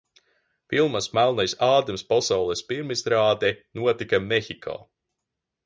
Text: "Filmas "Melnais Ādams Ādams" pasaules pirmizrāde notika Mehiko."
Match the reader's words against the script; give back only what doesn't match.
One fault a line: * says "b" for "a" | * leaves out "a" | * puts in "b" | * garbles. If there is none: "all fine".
* leaves out "Ādams"